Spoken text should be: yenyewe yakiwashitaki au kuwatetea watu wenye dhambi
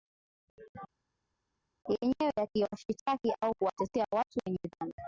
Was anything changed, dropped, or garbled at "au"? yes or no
no